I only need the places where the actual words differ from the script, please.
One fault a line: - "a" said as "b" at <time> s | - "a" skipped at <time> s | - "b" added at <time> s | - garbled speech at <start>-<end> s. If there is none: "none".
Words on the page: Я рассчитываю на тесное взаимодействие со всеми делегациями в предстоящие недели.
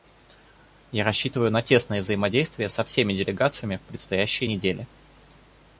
none